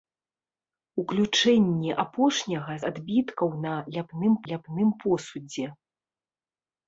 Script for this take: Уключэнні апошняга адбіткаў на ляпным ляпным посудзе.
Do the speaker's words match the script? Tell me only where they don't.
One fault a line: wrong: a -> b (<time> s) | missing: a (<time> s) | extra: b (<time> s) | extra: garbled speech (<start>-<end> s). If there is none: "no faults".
no faults